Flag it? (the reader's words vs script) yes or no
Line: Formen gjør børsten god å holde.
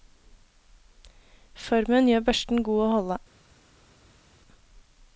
no